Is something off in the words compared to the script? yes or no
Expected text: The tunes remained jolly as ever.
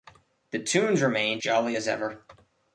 no